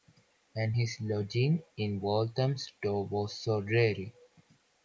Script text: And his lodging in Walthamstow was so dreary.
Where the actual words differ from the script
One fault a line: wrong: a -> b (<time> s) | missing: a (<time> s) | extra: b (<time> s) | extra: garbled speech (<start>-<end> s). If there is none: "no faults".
no faults